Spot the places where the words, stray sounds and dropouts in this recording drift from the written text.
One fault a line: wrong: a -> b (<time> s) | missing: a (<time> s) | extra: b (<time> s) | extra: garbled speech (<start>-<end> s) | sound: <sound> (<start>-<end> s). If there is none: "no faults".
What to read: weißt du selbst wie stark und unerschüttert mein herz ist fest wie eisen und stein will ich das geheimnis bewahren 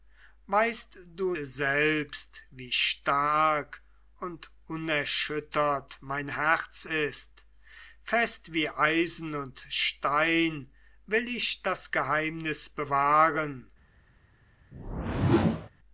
sound: whoosh (14.7-15.7 s)